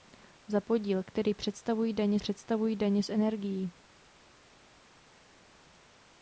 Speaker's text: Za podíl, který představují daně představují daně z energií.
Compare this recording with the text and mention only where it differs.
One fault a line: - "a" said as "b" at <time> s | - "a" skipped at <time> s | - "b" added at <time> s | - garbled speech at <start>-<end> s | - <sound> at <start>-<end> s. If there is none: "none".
none